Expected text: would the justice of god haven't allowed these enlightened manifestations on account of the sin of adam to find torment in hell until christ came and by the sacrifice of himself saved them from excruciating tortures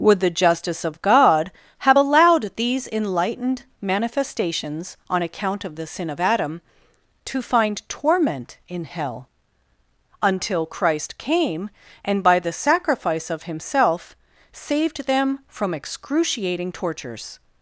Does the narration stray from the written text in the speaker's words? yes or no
yes